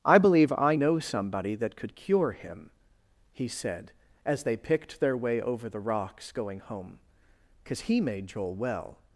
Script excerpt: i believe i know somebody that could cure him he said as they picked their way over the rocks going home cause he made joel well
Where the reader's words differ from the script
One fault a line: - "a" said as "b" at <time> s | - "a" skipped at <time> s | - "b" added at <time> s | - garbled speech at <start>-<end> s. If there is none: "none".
none